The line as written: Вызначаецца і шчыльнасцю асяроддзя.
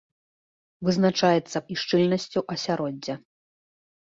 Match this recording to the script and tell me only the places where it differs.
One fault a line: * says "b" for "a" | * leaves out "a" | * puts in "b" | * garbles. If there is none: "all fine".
all fine